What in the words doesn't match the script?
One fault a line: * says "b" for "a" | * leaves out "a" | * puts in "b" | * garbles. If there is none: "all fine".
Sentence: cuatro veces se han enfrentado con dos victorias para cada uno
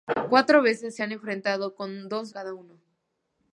* leaves out "victorias para"